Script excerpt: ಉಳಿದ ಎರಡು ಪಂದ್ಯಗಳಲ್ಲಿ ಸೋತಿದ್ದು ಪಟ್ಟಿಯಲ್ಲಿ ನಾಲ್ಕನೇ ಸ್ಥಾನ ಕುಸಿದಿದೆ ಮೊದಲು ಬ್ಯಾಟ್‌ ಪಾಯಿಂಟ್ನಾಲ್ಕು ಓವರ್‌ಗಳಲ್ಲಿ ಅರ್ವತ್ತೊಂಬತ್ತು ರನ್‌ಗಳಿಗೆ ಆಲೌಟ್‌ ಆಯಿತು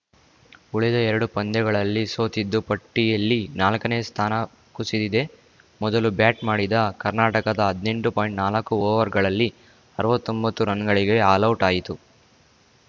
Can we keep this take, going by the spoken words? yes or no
no